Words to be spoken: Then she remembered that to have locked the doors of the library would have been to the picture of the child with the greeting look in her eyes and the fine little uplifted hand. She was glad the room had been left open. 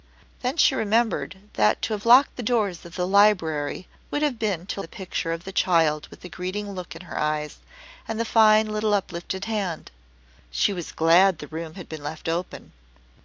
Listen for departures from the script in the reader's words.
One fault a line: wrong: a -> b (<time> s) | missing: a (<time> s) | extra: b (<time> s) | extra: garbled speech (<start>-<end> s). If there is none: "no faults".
no faults